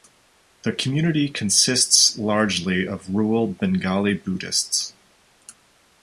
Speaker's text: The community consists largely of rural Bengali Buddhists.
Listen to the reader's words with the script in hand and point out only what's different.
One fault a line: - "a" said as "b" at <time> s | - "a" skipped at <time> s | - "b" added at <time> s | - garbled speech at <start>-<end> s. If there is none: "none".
none